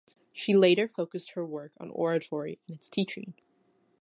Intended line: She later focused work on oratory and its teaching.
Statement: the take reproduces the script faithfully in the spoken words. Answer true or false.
false